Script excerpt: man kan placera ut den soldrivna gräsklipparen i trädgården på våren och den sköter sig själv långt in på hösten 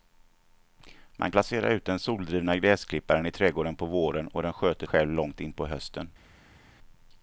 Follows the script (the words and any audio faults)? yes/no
no